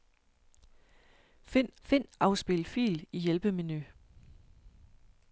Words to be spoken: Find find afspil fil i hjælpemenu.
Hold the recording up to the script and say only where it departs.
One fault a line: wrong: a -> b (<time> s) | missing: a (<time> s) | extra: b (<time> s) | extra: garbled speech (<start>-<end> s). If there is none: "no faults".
no faults